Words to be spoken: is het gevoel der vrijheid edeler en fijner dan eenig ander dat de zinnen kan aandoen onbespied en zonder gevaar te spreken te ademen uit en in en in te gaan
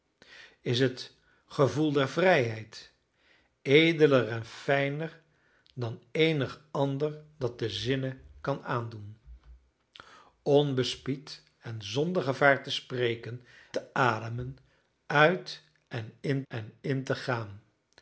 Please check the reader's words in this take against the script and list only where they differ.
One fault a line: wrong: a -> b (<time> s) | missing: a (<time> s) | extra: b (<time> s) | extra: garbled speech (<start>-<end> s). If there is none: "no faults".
no faults